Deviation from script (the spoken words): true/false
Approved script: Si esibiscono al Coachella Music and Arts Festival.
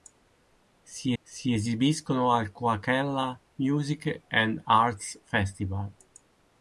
true